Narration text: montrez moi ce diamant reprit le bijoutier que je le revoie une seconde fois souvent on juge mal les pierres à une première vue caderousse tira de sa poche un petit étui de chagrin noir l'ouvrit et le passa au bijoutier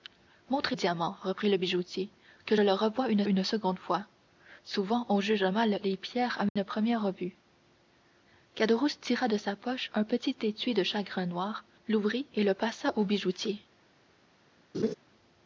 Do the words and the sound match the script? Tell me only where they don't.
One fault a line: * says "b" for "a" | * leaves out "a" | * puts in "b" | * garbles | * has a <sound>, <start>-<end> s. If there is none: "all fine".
* leaves out "moi ce"
* leaves out "je"
* puts in "une"
* has a dropout, 6.5-6.6 s
* has a laugh, 14.7-14.9 s